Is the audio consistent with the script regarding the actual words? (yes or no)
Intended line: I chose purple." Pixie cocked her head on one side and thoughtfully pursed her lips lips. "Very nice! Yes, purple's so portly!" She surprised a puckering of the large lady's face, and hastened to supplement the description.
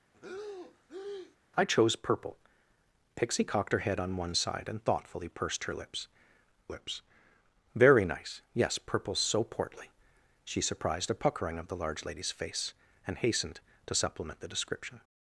yes